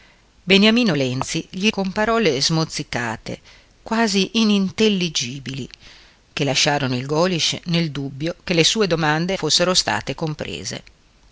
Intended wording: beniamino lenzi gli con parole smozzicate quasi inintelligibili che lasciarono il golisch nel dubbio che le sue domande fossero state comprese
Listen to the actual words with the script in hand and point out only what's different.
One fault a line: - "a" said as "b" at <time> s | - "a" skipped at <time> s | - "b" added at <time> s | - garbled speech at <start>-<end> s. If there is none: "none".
none